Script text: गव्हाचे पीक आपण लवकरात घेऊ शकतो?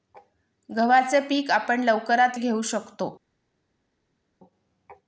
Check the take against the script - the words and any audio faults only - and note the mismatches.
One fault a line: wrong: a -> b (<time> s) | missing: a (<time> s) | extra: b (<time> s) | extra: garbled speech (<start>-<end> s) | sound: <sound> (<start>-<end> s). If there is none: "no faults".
no faults